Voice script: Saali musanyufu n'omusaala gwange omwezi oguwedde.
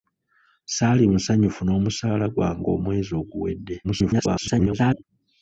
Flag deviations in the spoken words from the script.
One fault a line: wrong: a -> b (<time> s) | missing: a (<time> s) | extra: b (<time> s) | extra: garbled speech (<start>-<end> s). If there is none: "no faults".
extra: garbled speech (3.8-5.0 s)